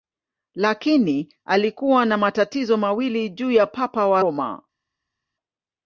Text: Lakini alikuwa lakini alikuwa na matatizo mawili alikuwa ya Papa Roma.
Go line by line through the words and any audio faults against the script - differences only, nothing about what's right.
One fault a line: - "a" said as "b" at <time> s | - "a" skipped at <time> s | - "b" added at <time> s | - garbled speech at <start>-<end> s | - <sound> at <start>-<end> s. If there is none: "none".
- "lakini alikuwa" skipped at 2.0 s
- "alikuwa" said as "juu" at 3.3 s
- "wa" added at 4.1 s